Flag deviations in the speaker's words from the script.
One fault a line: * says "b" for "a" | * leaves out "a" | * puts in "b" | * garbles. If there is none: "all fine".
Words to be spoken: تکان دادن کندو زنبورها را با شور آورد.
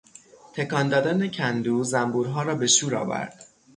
* says "به" for "با"